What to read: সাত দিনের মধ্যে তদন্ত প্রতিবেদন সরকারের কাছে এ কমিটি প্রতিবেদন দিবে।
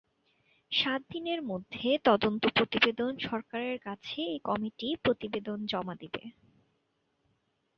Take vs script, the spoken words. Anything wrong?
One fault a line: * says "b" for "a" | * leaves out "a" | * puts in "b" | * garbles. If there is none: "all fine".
* puts in "জমা"